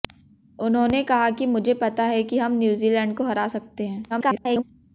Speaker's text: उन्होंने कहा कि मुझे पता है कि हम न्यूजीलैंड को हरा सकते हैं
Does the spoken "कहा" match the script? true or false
true